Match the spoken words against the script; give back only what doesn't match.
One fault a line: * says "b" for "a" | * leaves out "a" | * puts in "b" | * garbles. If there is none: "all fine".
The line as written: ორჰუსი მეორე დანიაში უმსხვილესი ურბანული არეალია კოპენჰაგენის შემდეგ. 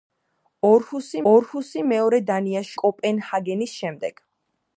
* puts in "ორჰუსი"
* leaves out "უმსხვილესი ურბანული არეალია"